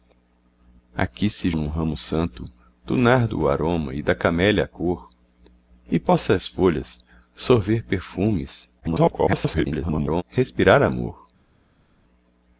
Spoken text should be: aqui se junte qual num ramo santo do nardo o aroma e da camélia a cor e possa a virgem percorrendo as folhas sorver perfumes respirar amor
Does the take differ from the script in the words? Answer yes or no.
yes